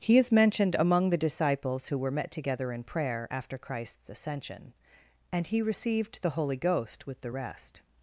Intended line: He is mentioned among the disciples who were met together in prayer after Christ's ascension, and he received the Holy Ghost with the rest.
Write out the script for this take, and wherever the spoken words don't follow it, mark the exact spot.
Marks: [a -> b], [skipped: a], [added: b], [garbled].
He is mentioned among the disciples who were met together in prayer after Christ's ascension, and he received the Holy Ghost with the rest.